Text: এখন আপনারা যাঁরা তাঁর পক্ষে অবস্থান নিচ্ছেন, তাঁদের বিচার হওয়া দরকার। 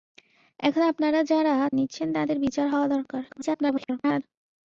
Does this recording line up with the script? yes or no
no